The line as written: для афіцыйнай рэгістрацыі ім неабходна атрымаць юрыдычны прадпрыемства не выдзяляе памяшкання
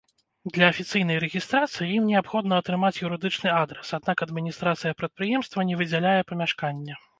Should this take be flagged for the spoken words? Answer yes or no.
yes